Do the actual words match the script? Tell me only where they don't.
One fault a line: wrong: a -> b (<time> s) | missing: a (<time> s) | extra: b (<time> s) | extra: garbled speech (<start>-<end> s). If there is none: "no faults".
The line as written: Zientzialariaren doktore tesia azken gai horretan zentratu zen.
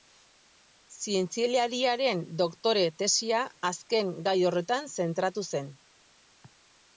no faults